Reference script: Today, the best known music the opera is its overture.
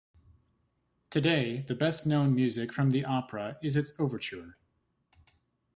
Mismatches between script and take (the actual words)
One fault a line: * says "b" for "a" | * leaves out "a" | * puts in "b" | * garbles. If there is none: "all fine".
* puts in "from"